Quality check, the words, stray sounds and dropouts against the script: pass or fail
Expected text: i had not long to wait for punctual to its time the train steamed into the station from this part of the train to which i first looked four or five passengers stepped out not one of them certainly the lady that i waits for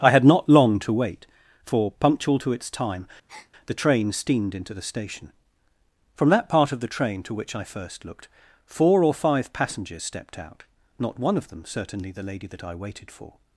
fail